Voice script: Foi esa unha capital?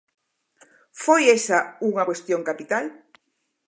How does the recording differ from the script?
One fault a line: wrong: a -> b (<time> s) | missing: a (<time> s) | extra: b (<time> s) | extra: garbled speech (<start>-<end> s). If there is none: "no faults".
extra: cuestión (2.1 s)